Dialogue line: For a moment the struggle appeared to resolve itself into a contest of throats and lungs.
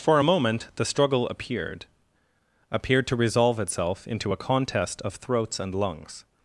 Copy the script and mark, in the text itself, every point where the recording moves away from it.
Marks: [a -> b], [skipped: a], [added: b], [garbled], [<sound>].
For a moment the struggle appeared [added: appeared] to resolve itself into a contest of throats and lungs.